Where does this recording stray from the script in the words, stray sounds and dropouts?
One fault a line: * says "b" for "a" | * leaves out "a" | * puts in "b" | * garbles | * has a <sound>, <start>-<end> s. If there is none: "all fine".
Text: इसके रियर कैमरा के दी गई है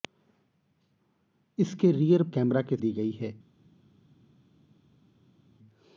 all fine